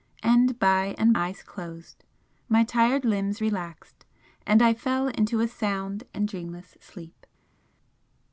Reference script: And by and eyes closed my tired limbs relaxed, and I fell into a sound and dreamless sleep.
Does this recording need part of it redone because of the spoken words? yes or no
no